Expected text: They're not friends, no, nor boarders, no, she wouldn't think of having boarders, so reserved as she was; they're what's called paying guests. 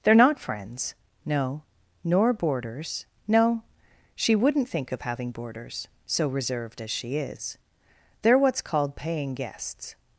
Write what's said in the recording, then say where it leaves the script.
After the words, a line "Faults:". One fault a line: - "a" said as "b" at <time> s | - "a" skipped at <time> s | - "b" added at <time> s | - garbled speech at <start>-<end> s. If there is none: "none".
They're not friends, no, nor boarders, no, she wouldn't think of having boarders, so reserved as she is; they're what's called paying guests.
Faults:
- "was" said as "is" at 7.2 s